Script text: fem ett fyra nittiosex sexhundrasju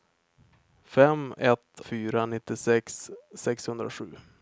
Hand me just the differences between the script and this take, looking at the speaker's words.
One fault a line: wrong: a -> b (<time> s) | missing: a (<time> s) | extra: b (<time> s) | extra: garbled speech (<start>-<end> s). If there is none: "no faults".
no faults